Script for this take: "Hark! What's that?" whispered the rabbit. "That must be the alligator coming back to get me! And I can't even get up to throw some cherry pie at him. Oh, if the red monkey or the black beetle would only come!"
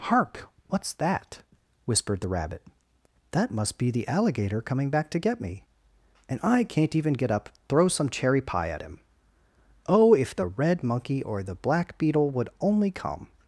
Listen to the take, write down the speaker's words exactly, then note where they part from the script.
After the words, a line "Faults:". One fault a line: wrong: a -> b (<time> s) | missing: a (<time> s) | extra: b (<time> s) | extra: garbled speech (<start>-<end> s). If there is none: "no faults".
"Hark! What's that?" whispered the rabbit. "That must be the alligator coming back to get me! And I can't even get up throw some cherry pie at him. Oh, if the red monkey or the black beetle would only come!"
Faults:
missing: to (7.5 s)